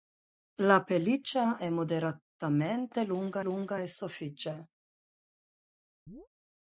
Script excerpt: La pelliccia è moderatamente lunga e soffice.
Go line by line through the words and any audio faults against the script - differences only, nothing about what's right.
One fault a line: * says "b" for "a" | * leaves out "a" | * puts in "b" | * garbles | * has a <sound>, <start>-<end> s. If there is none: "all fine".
* puts in "lunga"
* has a chirp, 6.1-6.3 s